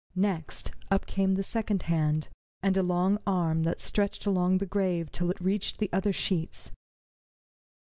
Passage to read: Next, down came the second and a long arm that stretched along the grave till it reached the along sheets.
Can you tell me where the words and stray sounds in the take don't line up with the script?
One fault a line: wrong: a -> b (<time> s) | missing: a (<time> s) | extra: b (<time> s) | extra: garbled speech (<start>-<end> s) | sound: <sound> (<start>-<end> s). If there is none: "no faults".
wrong: down -> up (0.9 s)
extra: hand (1.8 s)
wrong: along -> other (5.9 s)